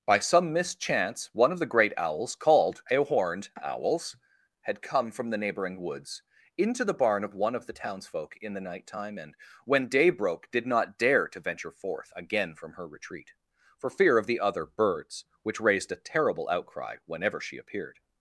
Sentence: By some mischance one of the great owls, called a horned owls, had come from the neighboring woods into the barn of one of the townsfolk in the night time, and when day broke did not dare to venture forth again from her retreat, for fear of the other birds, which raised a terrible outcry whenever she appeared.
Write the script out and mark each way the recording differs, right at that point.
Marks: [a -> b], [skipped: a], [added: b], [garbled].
By some mischance one of the great owls, called a horned owls, had come from the neighboring woods into the barn of one of the townsfolk in the night time, and when day broke did not dare to venture forth again from her retreat, for fear of the other birds, which raised a terrible outcry whenever she appeared.